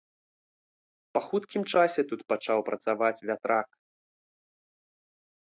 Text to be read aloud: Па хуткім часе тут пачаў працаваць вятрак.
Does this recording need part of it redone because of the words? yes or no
no